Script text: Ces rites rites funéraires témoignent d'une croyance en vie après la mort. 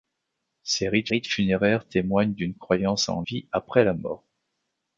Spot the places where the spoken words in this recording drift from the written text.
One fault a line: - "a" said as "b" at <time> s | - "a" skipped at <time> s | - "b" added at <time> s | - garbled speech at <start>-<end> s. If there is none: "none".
none